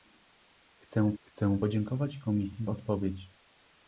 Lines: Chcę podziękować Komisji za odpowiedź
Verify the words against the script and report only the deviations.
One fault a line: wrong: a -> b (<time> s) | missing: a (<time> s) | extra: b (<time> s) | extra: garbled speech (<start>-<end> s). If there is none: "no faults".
extra: chcę (1.2 s)
missing: za (2.7 s)